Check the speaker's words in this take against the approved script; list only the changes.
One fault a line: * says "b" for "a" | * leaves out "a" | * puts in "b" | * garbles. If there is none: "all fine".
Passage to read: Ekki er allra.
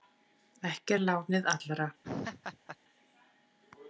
* puts in "lánið"